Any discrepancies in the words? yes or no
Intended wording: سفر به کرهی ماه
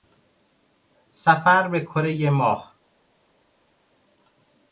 no